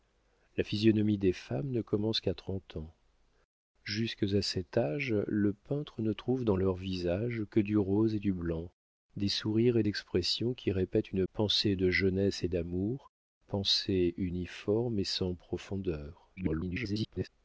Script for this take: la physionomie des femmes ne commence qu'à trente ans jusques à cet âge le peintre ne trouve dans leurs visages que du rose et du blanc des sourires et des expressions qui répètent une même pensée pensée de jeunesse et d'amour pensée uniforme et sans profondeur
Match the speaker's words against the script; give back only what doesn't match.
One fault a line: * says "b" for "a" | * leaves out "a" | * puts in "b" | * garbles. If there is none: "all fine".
* leaves out "des"
* leaves out "même pensée"
* garbles